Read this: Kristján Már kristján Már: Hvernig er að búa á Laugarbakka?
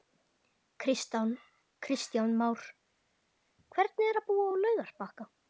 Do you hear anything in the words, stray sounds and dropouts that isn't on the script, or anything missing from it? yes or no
yes